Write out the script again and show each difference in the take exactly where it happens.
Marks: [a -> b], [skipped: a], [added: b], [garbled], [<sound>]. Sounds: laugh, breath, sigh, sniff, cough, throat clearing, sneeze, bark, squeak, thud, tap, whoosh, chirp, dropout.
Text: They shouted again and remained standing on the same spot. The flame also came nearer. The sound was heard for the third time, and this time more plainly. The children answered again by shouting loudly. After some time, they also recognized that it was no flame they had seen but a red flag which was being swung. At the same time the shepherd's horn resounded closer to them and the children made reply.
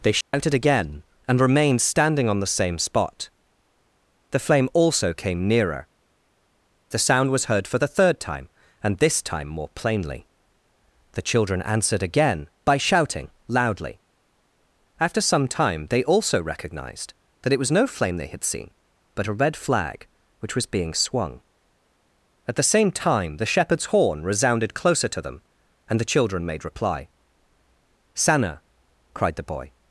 They shouted [dropout] again and remained standing on the same spot. The flame also came nearer. The sound was heard for the third time, and this time more plainly. The children answered again by shouting loudly. After some time, they also recognized that it was no flame they had seen but a red flag which was being swung. At the same time the shepherd's horn resounded closer to them and the children made reply. [added: Sanna cried the boy]